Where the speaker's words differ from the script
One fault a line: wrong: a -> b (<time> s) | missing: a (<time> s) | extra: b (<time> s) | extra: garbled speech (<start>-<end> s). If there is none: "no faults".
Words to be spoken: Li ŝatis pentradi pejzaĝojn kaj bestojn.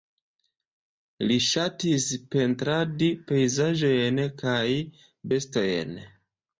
no faults